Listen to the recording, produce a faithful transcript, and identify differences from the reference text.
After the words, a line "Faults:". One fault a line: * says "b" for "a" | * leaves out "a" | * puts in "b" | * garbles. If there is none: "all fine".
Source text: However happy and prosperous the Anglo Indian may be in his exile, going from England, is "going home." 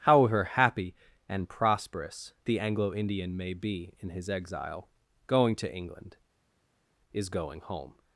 However happy and prosperous the Anglo Indian may be in his exile, going to England, is "going home."
Faults:
* says "to" for "from"